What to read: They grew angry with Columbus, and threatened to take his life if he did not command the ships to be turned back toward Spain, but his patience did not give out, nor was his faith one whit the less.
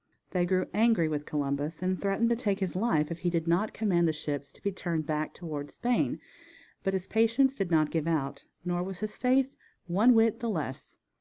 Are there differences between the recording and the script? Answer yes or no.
no